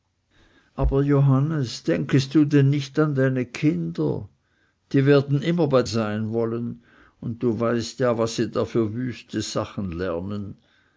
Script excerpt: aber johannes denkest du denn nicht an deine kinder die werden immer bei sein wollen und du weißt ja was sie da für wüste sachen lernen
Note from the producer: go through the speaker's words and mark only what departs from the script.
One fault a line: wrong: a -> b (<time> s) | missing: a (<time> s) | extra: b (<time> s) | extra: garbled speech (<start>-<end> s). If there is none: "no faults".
no faults